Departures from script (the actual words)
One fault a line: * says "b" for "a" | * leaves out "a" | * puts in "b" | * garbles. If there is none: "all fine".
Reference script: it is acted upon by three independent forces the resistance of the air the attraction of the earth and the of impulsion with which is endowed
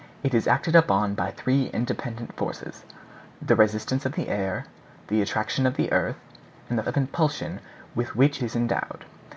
all fine